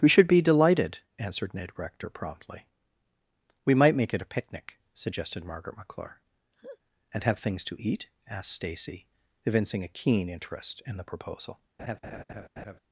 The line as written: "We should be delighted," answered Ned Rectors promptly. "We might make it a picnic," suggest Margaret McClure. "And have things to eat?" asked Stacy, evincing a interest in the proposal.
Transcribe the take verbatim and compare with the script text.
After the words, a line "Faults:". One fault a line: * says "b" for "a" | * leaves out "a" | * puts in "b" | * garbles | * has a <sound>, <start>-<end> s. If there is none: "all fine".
"We should be delighted," answered Ned Rector promptly. "We might make it a picnic," suggested Margaret McClure. "And have things to eat?" asked Stacy, evincing a keen interest in the proposal.
Faults:
* says "Rector" for "Rectors"
* says "suggested" for "suggest"
* has a laugh, 6.5-6.8 s
* puts in "keen"
* has a laugh, 11.8-12.8 s